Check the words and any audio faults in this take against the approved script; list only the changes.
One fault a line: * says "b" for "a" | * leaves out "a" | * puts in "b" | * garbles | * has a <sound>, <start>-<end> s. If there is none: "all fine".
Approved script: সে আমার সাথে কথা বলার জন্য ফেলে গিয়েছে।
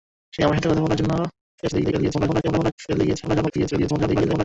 * garbles
* garbles